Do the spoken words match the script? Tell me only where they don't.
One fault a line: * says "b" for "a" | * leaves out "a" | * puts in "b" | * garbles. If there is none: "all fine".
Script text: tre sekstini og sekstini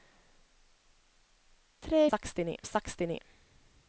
all fine